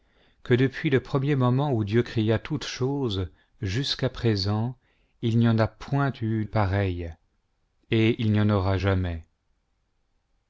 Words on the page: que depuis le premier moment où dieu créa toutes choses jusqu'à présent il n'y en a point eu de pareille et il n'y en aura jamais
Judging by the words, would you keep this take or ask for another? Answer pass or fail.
fail